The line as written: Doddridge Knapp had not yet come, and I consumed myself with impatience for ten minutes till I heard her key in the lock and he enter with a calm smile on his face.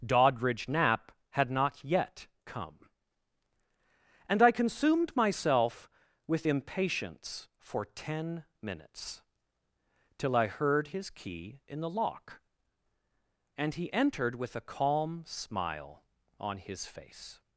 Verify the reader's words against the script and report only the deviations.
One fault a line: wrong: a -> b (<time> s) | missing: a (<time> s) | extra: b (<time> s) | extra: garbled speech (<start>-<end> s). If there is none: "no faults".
wrong: her -> his (10.9 s)
wrong: enter -> entered (13.9 s)